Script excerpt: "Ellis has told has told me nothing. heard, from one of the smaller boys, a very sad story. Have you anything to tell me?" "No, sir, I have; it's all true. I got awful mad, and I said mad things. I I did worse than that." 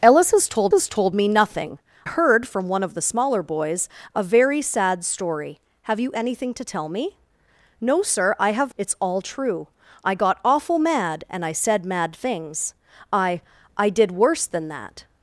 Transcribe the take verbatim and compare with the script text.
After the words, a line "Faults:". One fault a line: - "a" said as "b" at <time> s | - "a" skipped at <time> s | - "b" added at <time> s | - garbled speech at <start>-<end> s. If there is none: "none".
"Ellis has told has told me nothing. heard, from one of the smaller boys, a very sad story. Have you anything to tell me?" "No, sir, I have; it's all true. I got awful mad, and I said mad things. I I did worse than that."
Faults:
none